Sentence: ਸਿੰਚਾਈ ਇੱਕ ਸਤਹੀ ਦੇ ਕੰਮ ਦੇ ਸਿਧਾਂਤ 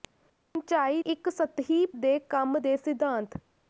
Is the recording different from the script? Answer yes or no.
no